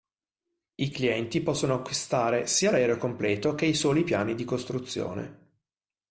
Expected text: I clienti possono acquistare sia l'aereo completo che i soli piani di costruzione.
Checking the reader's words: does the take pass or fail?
pass